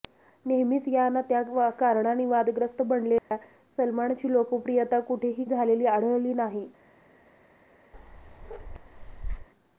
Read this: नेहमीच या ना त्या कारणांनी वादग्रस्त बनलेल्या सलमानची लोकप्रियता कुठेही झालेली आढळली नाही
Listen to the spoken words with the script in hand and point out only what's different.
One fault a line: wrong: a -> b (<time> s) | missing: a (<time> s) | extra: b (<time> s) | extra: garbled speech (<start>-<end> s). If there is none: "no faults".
no faults